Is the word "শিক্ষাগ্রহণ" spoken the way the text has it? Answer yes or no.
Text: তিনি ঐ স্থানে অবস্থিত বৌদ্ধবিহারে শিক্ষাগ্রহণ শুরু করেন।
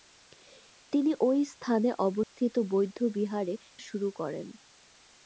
no